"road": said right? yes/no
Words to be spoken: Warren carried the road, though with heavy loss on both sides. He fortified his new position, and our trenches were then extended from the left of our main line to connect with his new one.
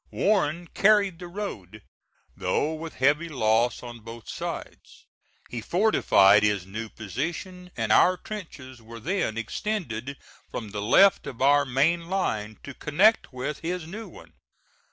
yes